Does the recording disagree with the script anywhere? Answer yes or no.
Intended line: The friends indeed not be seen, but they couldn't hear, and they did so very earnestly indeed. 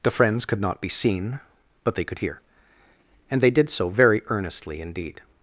yes